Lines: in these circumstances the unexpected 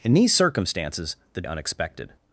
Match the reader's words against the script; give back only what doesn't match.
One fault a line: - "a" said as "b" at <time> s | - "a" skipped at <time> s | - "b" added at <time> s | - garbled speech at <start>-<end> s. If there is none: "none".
none